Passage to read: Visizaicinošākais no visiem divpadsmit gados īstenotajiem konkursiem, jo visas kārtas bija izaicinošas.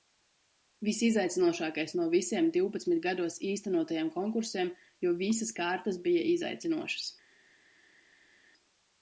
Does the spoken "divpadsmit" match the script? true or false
true